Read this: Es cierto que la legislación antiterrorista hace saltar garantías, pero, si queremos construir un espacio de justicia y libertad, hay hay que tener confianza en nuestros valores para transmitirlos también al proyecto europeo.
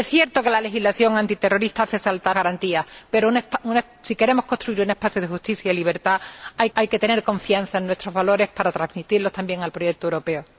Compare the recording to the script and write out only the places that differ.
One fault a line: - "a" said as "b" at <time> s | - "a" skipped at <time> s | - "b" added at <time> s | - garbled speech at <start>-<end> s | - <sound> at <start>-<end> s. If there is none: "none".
none